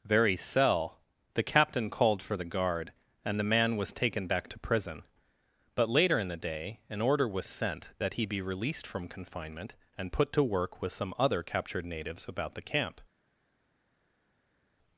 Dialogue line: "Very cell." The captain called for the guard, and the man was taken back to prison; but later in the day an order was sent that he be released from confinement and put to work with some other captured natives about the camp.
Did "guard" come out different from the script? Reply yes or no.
no